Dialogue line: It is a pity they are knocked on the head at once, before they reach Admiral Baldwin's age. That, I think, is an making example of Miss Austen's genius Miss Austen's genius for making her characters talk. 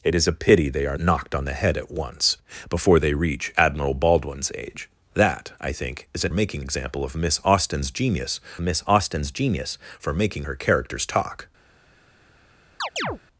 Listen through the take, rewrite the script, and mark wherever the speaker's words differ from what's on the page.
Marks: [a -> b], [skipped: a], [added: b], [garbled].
It is a pity they are knocked on the head at once, before they reach Admiral Baldwin's age. That, I think, is an making example of Miss Austen's genius Miss Austen's genius for making her characters talk.